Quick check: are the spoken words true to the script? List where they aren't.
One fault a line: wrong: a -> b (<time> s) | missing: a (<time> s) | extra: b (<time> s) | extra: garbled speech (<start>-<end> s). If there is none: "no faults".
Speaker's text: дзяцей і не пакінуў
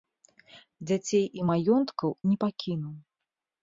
extra: маёнткаў (1.5 s)